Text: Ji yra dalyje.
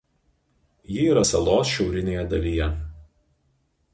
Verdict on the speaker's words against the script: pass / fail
fail